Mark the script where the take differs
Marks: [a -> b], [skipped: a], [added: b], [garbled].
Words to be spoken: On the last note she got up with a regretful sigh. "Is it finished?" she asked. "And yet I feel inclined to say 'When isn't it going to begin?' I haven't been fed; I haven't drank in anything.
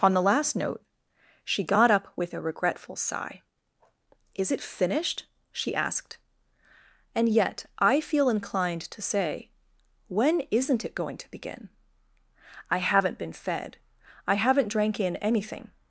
On the last note she got up with a regretful sigh. "Is it finished?" she asked. "And yet I feel inclined to say 'When isn't it going to begin?' I haven't been fed; I haven't drank in anything.